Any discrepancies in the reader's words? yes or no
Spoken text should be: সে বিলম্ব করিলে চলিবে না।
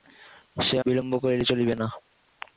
no